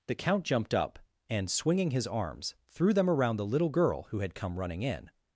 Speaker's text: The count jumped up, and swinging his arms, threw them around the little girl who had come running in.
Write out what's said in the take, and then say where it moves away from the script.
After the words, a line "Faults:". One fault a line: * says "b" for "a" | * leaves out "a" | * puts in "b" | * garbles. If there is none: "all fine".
The count jumped up, and swinging his arms, threw them around the little girl who had come running in.
Faults:
all fine